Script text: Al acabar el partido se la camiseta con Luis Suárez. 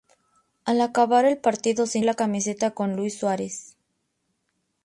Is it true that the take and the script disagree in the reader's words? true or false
false